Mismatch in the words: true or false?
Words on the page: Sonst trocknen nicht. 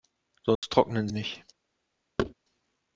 false